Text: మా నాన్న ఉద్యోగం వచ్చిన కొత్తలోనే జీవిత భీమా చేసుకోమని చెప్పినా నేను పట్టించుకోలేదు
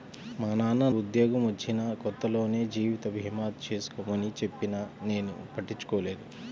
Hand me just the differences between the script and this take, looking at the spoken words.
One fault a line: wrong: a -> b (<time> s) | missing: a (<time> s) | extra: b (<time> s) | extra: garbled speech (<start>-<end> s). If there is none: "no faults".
no faults